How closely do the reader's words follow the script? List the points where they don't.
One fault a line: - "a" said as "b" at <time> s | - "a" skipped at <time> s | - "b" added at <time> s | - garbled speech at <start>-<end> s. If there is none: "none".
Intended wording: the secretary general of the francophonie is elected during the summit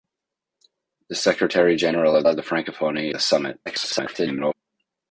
- "of" added at 2.3 s
- "is elected during" skipped at 3.1 s
- garbled speech at 3.7-4.5 s